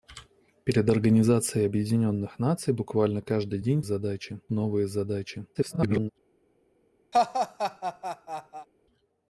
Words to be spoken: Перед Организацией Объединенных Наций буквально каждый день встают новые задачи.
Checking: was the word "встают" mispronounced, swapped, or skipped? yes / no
yes